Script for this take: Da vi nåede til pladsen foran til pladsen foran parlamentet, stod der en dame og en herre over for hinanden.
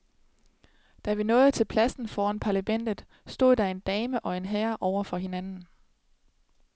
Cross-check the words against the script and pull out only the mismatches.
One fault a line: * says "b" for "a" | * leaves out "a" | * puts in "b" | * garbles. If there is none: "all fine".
* leaves out "til pladsen foran"